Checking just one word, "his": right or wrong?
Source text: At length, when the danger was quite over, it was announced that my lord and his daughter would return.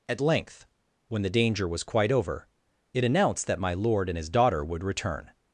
right